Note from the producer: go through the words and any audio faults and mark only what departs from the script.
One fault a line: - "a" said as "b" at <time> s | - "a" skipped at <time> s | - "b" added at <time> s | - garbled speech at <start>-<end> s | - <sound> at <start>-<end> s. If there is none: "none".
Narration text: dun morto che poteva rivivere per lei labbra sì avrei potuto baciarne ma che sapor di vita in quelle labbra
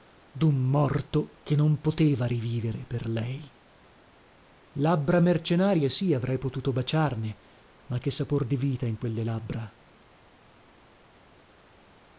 - "non" added at 1.6 s
- "mercenarie" added at 5.2 s